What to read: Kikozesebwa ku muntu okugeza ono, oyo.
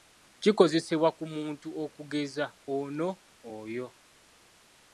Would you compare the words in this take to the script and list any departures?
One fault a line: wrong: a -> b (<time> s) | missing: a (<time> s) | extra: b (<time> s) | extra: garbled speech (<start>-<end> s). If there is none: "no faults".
no faults